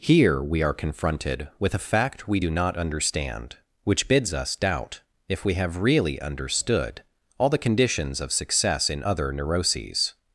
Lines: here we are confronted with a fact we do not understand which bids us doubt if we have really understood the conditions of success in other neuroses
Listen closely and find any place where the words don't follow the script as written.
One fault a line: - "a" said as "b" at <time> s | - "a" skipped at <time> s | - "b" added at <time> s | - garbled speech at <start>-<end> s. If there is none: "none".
- "all" added at 7.4 s